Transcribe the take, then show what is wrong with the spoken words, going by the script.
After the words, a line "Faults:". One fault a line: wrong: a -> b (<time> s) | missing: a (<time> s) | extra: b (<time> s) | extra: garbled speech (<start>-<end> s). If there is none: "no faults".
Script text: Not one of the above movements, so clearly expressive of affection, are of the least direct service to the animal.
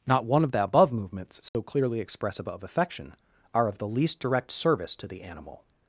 Not one of the above movements, so clearly expressive of affection, are of the least direct service to the animal.
Faults:
no faults